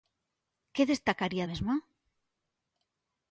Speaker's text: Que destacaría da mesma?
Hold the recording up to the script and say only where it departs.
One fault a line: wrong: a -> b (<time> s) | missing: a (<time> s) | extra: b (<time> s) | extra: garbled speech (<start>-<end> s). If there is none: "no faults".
missing: da (1.4 s)